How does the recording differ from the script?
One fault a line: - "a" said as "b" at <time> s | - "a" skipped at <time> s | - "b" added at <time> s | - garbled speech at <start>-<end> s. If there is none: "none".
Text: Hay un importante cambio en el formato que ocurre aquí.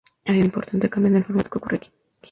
none